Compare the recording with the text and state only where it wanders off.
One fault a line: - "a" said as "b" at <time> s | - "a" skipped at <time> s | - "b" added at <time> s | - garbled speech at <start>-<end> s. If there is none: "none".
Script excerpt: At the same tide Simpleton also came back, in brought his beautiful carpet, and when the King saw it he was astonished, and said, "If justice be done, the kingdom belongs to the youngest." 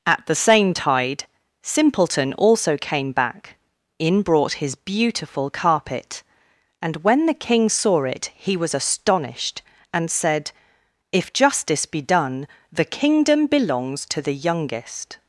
none